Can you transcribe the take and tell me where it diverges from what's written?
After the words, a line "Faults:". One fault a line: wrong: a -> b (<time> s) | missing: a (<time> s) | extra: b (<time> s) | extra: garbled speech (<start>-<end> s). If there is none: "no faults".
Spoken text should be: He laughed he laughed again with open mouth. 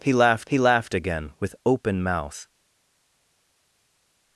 He laughed he laughed again with open mouth.
Faults:
no faults